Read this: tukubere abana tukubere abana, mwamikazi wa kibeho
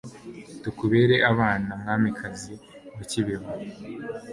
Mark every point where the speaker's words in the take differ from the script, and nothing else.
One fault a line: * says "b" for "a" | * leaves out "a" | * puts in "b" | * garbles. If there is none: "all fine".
* leaves out "tukubere abana"